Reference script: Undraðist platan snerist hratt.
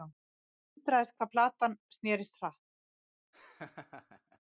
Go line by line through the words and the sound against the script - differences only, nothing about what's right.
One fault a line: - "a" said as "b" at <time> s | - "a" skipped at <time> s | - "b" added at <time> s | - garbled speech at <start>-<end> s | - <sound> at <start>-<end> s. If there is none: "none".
- "hvað" added at 1.2 s
- laugh at 3.3-4.4 s